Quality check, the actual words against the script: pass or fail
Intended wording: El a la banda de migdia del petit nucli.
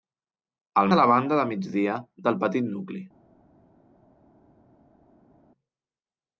pass